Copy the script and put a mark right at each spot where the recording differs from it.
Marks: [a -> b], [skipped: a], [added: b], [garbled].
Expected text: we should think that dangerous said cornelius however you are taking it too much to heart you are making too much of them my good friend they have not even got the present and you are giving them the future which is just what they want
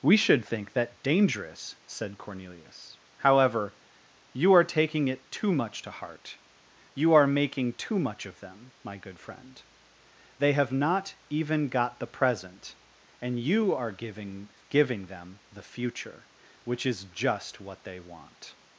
we should think that dangerous said cornelius however you are taking it too much to heart you are making too much of them my good friend they have not even got the present and you are giving [added: giving] them the future which is just what they want